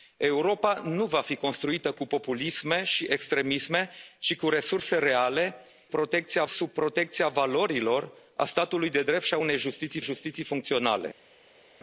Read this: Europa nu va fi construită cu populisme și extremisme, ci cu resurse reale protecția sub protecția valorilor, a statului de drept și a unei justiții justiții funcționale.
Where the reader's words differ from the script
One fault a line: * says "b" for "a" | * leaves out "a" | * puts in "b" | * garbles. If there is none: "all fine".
all fine